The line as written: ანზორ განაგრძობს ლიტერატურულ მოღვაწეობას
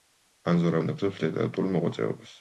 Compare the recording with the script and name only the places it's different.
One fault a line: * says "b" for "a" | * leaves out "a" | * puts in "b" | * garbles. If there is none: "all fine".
all fine